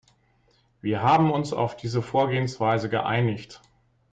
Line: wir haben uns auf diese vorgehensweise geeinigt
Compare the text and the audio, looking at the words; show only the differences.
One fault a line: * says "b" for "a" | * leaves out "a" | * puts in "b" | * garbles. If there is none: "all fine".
all fine